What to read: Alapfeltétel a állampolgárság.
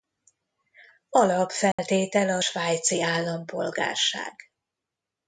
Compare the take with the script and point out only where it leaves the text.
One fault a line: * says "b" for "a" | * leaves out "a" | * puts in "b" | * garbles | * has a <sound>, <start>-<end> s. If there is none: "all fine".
* has a dropout, 1.7-1.8 s
* puts in "svájci"